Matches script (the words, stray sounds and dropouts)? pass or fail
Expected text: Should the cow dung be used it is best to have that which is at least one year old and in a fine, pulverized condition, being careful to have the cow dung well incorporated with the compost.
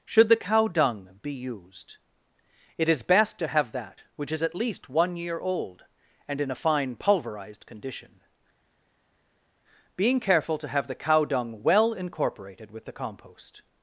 pass